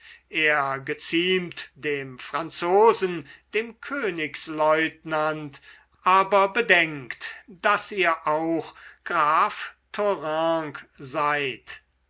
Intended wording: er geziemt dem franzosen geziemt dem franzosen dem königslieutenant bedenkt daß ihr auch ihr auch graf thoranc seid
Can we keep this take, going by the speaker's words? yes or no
no